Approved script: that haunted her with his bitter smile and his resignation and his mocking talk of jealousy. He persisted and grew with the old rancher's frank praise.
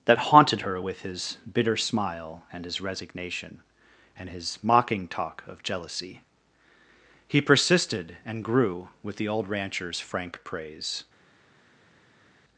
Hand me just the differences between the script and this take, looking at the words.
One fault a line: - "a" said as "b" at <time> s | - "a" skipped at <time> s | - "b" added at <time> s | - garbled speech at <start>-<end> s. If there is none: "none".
none